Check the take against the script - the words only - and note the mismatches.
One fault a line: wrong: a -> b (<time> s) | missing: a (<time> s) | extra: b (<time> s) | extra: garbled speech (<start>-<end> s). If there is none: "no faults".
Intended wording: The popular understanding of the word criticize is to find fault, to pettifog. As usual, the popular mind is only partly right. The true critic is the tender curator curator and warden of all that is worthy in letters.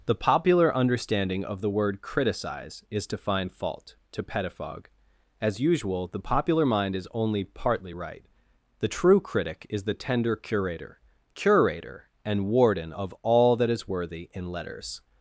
no faults